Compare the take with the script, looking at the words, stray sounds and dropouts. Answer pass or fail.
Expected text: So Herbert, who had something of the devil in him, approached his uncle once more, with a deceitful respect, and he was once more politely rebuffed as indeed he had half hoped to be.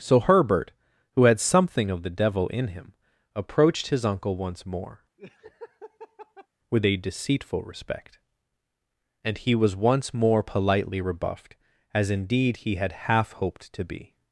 fail